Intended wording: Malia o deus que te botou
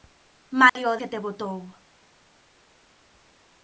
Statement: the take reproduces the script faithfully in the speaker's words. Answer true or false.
false